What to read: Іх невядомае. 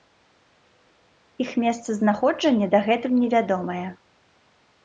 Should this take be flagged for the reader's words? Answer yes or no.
yes